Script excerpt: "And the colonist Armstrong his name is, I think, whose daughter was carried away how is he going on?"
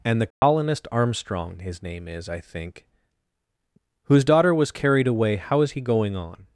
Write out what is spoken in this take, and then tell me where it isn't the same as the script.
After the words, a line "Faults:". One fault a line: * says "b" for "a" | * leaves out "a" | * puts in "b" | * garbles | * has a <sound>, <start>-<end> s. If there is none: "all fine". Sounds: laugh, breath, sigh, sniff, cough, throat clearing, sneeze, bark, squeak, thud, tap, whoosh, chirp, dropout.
"And the colonist Armstrong his name is, I think, whose daughter was carried away how is he going on?"
Faults:
* has a dropout, 0.3-0.4 s